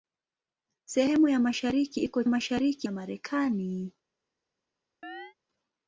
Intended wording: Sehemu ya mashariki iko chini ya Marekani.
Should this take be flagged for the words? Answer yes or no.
yes